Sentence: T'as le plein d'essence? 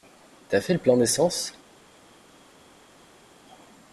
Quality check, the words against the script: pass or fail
fail